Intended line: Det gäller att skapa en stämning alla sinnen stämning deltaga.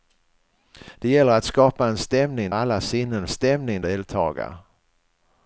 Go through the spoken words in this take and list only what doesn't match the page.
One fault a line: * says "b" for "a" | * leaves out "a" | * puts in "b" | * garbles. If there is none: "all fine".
all fine